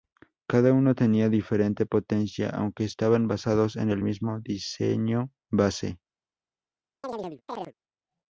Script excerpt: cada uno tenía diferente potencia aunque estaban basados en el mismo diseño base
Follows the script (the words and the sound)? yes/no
no